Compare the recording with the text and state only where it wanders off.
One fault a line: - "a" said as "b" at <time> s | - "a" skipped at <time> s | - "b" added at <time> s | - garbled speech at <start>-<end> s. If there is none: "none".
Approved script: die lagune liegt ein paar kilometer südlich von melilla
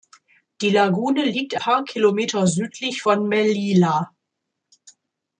- "ein" skipped at 1.6 s